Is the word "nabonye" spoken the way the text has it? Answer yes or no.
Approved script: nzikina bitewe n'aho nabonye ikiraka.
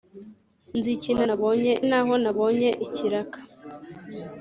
yes